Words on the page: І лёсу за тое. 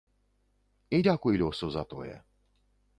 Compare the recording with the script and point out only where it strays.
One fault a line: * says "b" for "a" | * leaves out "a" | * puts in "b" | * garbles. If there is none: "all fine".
* puts in "дзякуй"